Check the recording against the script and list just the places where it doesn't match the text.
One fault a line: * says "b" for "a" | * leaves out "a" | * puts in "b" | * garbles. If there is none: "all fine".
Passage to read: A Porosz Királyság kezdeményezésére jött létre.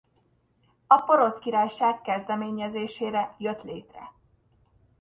all fine